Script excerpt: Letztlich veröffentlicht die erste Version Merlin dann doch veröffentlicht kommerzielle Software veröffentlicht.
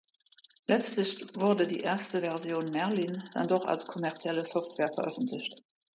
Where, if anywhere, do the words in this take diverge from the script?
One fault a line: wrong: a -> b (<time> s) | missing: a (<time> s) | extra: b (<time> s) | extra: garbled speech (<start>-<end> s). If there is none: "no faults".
wrong: veröffentlicht -> wurde (1.4 s)
wrong: veröffentlicht -> als (3.6 s)